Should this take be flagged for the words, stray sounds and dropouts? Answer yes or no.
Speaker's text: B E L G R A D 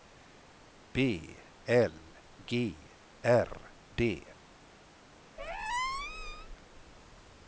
yes